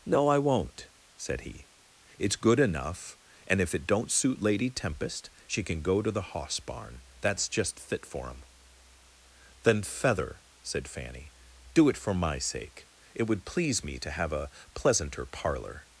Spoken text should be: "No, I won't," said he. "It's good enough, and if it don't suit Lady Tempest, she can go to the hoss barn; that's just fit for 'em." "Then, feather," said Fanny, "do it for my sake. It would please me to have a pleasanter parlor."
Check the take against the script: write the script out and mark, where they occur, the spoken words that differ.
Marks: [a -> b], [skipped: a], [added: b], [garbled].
"No, I won't," said he. "It's good enough, and if it don't suit Lady Tempest, she can go to the hoss barn; that's just fit for 'em." "Then, feather," said Fanny, "do it for my sake. It would please me to have a pleasanter parlor."